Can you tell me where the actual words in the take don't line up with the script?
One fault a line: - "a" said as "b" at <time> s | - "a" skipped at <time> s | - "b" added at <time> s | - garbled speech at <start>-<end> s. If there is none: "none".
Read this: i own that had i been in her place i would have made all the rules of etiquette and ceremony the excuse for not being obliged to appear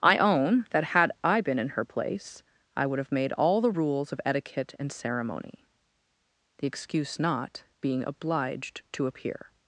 - "for" skipped at 7.2 s